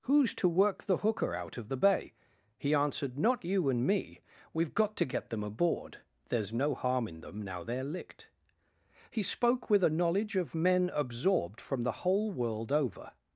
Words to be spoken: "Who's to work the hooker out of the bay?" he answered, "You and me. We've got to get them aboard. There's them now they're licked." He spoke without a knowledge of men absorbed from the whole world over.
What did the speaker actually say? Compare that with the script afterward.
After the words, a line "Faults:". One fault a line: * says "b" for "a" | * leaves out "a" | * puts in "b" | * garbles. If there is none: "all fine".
"Who's to work the hooker out of the bay?" he answered, "Not you and me. We've got to get them aboard. There's no harm in them now they're licked." He spoke with a knowledge of men absorbed from the whole world over.
Faults:
* puts in "Not"
* puts in "no harm in"
* says "with" for "without"